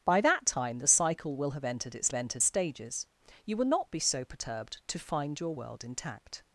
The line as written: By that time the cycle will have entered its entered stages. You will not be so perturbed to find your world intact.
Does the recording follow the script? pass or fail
pass